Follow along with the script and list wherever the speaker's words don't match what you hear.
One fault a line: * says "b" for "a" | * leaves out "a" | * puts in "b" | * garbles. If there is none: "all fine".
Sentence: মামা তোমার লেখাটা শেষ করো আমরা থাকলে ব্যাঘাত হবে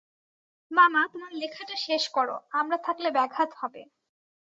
all fine